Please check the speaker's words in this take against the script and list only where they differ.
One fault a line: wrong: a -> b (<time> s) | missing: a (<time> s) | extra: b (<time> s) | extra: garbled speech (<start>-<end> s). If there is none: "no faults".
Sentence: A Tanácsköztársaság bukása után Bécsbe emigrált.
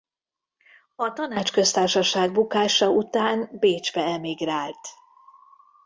no faults